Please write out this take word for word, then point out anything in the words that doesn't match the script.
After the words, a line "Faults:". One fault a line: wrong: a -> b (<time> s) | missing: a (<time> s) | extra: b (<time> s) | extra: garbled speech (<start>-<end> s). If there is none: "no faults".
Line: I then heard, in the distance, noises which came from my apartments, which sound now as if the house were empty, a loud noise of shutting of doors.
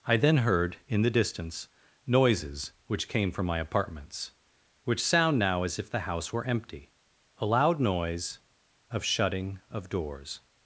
I then heard, in the distance, noises which came from my apartments, which sound now as if the house were empty, a loud noise of shutting of doors.
Faults:
no faults